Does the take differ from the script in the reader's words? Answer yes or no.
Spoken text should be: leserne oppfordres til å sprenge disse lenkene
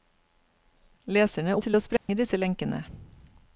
yes